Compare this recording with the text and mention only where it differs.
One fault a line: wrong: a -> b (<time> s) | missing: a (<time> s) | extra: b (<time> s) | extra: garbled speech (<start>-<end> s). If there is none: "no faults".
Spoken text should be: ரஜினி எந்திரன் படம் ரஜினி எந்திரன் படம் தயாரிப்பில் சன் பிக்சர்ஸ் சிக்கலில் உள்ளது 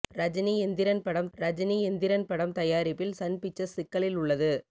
no faults